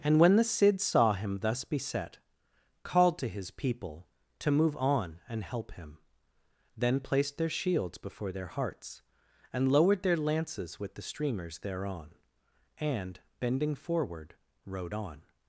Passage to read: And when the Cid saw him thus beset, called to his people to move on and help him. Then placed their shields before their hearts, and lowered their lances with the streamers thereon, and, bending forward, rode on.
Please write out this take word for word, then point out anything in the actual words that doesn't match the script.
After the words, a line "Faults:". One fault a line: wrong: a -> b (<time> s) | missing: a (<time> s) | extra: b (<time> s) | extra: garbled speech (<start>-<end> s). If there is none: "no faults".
And when the Cid saw him thus beset, called to his people to move on and help him. Then placed their shields before their hearts, and lowered their lances with the streamers thereon, and, bending forward, rode on.
Faults:
no faults